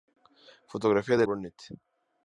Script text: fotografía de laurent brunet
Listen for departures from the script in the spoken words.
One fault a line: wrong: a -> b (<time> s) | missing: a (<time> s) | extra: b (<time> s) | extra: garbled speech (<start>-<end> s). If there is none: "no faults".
missing: laurent (1.3 s)